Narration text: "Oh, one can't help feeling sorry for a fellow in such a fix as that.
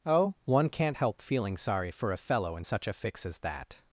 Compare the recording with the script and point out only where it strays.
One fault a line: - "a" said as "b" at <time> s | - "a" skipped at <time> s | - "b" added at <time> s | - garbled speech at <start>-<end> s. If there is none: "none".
none